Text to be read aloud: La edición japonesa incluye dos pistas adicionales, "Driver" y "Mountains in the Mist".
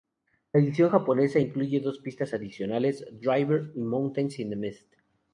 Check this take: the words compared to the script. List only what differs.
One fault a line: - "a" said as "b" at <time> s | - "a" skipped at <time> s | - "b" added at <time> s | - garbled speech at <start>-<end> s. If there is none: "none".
none